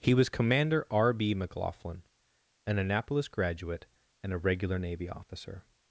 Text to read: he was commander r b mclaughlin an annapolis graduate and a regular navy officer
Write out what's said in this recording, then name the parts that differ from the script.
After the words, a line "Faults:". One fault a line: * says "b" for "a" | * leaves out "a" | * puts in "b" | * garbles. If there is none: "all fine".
he was commander r b mclaughlin an annapolis graduate and a regular navy officer
Faults:
all fine